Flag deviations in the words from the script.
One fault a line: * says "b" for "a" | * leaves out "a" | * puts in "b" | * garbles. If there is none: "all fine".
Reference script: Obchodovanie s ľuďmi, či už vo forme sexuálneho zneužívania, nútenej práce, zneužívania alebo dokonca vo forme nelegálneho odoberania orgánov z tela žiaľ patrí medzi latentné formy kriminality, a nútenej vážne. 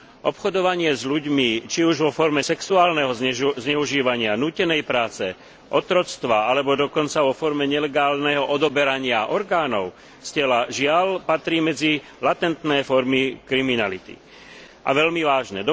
* says "otroctva" for "zneužívania"
* says "veľmi" for "nútenej"